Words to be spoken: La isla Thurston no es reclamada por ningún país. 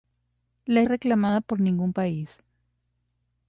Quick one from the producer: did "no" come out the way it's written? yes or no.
no